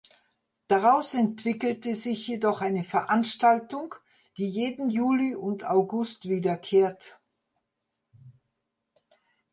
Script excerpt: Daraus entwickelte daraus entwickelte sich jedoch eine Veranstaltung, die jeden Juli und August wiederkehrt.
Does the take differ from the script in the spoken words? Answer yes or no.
yes